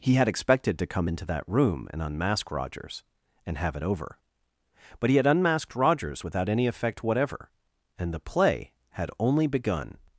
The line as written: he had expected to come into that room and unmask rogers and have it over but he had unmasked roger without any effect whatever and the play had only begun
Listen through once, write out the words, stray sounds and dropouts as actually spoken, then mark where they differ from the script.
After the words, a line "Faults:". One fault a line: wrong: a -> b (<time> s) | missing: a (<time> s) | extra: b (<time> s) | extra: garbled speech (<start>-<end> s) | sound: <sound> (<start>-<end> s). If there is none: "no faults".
he had expected to come into that room and unmask rogers and have it over but he had unmasked rogers without any effect whatever and the play had only begun
Faults:
wrong: roger -> rogers (5.8 s)